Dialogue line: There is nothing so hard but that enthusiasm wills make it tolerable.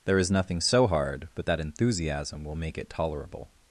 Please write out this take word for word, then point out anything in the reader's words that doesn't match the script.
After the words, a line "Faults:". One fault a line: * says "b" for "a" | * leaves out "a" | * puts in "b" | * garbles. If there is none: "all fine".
There is nothing so hard but that enthusiasm will make it tolerable.
Faults:
* says "will" for "wills"